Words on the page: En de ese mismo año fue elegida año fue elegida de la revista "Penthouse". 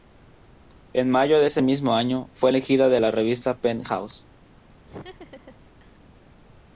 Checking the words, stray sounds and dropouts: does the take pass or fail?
fail